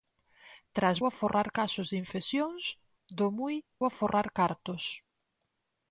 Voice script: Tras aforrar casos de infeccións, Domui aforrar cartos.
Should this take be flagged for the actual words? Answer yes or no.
no